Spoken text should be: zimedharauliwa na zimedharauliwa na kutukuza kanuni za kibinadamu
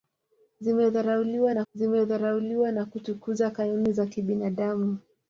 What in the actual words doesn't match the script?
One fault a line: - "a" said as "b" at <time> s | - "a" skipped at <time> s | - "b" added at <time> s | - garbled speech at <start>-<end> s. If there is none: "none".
none